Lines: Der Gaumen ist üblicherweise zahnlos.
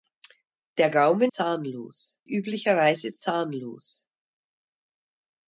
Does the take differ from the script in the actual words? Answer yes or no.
yes